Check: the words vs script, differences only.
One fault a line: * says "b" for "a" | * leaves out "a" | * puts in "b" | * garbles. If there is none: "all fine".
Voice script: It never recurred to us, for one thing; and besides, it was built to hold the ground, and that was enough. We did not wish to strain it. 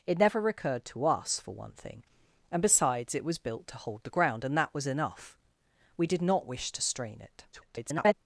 * garbles